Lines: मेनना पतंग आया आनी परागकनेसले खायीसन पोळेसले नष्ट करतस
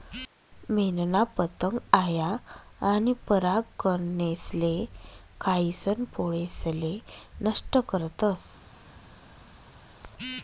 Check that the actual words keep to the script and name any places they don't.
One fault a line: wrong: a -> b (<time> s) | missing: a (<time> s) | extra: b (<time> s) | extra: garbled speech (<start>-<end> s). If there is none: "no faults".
no faults